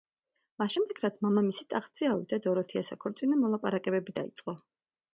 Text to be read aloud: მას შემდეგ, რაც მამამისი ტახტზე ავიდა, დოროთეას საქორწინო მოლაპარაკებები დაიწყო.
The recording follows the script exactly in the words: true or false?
true